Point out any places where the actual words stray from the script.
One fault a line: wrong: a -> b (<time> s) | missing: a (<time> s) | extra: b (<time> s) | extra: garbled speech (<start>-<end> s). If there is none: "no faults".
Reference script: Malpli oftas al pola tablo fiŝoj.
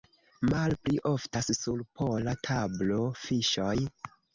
wrong: al -> sur (1.6 s)